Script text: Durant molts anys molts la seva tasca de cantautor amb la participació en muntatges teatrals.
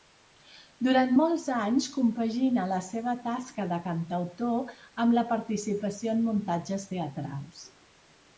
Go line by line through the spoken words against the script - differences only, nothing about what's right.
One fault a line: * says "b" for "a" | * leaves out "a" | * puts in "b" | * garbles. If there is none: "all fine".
* says "compagina" for "molts"